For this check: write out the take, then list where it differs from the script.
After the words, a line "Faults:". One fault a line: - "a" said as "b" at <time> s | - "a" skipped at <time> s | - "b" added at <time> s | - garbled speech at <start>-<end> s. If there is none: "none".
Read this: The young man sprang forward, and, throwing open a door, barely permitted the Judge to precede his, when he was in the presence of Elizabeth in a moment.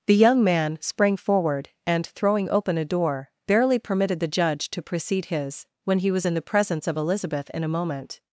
The young man sprang forward, and, throwing open a door, barely permitted the Judge to precede his, when he was in the presence of Elizabeth in a moment.
Faults:
none